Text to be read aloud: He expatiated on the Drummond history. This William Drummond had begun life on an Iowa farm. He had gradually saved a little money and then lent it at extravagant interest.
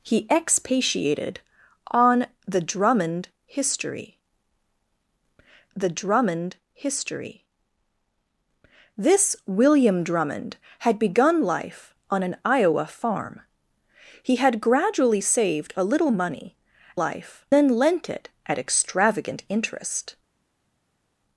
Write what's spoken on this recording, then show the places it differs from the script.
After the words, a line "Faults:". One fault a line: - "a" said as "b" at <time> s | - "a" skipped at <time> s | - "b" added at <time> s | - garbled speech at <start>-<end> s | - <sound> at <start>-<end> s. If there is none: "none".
He expatiated on the Drummond history the Drummond history. This William Drummond had begun life on an Iowa farm. He had gradually saved a little money life then lent it at extravagant interest.
Faults:
- "the Drummond history" added at 5.8 s
- "and" said as "life" at 16.9 s